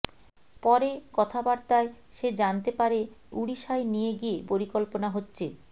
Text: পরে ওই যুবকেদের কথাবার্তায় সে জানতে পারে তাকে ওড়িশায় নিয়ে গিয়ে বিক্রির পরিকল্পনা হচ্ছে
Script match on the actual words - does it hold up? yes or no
no